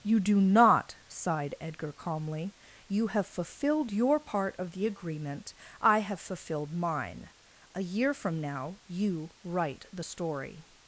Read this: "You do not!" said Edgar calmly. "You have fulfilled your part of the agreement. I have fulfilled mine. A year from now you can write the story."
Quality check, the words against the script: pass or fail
fail